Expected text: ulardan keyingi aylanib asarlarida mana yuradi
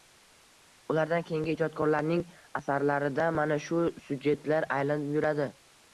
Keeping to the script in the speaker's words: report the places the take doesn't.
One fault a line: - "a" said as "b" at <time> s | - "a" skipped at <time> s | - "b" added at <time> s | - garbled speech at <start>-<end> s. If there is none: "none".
- "aylanib" said as "ijodkorlarning" at 1.6 s
- "shu syujetlar aylanib" added at 3.7 s